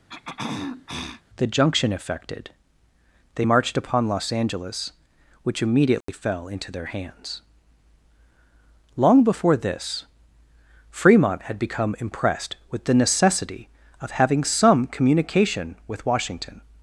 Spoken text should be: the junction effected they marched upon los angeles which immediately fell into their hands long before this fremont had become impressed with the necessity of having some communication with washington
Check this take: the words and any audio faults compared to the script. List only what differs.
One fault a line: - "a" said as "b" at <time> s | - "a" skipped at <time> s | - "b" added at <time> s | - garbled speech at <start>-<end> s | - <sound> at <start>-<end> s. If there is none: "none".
- throat clearing at 0.1-1.2 s
- dropout at 6.0-6.1 s